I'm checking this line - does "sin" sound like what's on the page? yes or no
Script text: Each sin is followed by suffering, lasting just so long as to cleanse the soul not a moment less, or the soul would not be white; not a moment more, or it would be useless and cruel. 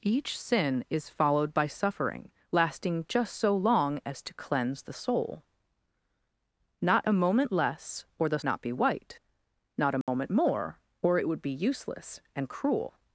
yes